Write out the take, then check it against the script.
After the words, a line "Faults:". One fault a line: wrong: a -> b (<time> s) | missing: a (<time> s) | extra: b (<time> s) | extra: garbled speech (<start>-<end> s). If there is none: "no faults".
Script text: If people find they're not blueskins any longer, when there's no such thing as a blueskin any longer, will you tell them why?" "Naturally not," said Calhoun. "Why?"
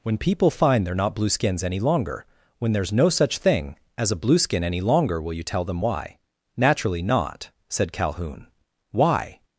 When people find they're not blueskins any longer, when there's no such thing as a blueskin any longer, will you tell them why?" "Naturally not," said Calhoun. "Why?"
Faults:
wrong: If -> When (0.0 s)